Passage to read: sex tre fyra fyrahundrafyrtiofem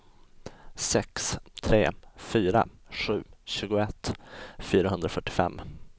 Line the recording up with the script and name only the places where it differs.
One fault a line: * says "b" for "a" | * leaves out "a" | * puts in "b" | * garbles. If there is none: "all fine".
* puts in "sju tjugoett"